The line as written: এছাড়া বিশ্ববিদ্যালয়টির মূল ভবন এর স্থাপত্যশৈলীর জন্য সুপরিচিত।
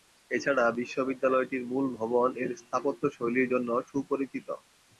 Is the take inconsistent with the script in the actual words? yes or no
no